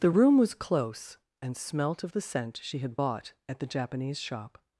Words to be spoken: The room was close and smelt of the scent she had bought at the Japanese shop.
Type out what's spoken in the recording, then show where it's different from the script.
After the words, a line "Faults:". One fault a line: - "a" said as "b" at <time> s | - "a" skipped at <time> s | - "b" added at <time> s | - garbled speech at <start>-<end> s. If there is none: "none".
The room was close and smelt of the scent she had bought at the Japanese shop.
Faults:
none